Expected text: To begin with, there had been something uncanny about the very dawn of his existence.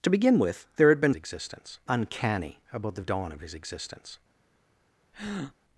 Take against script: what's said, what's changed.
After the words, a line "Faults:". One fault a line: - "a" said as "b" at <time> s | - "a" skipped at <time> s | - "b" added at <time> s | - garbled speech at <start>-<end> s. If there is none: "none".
To begin with, there had been existence uncanny about the dawn of his existence.
Faults:
- "something" said as "existence" at 1.1 s
- "very" skipped at 3.0 s